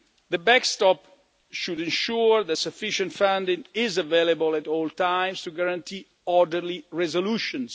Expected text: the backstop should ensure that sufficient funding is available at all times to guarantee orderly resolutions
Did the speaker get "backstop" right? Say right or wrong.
right